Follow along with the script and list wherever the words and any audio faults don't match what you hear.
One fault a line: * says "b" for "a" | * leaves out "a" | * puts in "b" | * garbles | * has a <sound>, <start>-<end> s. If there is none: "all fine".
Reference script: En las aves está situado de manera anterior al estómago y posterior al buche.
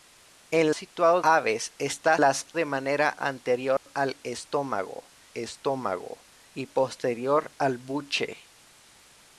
* says "situado" for "las"
* says "las" for "situado"
* has a dropout, 3.8-3.9 s
* puts in "estómago"